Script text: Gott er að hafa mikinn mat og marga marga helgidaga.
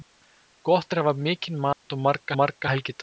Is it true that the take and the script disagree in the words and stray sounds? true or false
true